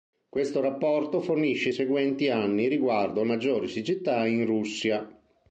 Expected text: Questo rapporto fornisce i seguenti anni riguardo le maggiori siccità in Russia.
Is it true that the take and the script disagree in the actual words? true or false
true